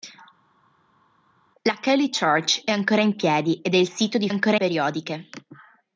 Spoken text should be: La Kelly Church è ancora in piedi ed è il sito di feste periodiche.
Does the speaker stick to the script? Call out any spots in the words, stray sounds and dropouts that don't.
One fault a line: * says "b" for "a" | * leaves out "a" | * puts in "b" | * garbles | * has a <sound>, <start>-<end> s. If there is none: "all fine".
* says "ancora" for "feste"